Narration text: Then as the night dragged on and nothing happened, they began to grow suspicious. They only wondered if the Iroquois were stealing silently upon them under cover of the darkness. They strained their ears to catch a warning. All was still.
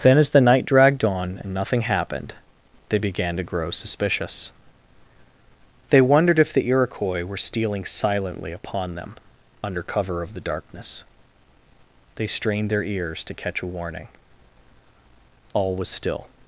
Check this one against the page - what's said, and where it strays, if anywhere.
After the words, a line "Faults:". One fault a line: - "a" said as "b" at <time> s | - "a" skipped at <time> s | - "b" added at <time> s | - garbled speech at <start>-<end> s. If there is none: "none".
Then as the night dragged on and nothing happened, they began to grow suspicious. They wondered if the Iroquois were stealing silently upon them under cover of the darkness. They strained their ears to catch a warning. All was still.
Faults:
- "only" skipped at 6.0 s